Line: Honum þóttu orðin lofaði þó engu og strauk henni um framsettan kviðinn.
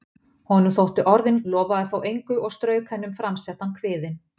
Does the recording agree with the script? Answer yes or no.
yes